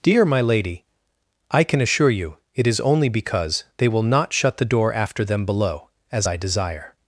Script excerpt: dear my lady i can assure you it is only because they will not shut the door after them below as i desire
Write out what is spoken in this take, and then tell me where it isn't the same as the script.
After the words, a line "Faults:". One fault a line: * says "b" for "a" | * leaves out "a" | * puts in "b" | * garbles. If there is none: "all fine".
dear my lady i can assure you it is only because they will not shut the door after them below as i desire
Faults:
all fine